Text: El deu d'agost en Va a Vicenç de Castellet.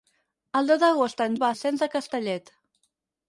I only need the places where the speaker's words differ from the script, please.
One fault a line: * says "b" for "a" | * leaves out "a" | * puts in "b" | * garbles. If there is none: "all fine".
all fine